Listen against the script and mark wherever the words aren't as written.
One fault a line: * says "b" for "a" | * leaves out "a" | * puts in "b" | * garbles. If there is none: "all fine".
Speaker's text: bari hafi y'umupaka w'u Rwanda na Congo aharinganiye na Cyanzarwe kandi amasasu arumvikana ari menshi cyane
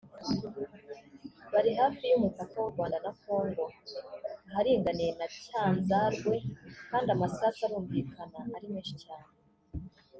all fine